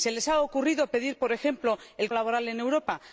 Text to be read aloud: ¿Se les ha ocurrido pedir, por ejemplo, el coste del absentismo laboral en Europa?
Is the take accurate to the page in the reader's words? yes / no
no